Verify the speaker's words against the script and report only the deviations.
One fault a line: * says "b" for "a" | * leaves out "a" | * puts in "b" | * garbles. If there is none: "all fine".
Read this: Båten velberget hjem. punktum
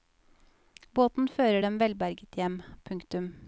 * puts in "fører dem"